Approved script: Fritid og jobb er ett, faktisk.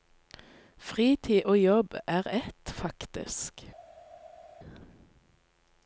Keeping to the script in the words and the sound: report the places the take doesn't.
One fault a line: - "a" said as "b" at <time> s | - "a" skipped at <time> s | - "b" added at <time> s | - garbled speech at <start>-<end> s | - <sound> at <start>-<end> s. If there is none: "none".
none